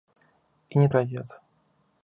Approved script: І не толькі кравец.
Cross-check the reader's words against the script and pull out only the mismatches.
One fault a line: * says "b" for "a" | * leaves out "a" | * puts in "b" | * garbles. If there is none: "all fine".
* leaves out "толькі"